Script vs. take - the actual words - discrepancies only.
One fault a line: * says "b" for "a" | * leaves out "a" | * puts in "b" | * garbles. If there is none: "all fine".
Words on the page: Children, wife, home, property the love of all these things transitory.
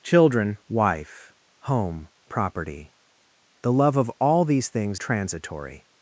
all fine